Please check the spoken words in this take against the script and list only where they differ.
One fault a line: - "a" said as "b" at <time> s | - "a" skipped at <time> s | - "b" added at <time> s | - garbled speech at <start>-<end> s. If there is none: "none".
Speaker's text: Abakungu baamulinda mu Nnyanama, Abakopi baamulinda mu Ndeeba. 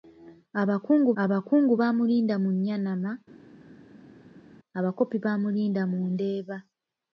- "abakungu" added at 1.2 s